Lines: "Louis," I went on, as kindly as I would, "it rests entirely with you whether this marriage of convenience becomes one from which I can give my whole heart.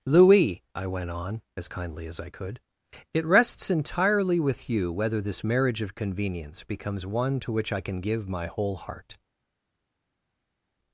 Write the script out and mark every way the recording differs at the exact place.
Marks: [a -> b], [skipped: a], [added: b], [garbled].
"Louis," I went on, as kindly as I [would, -> could] "it rests entirely with you whether this marriage of convenience becomes one [from -> to] which I can give my whole heart.